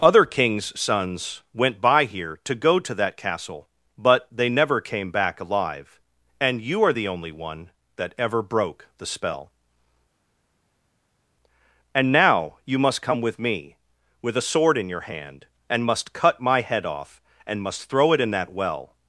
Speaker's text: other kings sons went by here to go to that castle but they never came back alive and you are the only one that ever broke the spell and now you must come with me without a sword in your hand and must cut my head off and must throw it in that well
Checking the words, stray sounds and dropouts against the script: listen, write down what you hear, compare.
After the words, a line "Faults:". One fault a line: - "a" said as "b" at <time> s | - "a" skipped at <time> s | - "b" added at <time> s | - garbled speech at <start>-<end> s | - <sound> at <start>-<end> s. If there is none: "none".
other kings sons went by here to go to that castle but they never came back alive and you are the only one that ever broke the spell and now you must come with me with a sword in your hand and must cut my head off and must throw it in that well
Faults:
- "without" said as "with" at 14.2 s